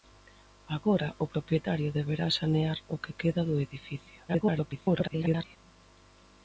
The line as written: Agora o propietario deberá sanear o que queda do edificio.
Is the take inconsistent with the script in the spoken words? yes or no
yes